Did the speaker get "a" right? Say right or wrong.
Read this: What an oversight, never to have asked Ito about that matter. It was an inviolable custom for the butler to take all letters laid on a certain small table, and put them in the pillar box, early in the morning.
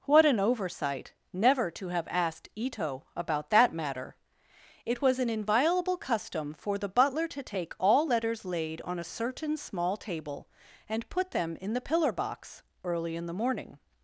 right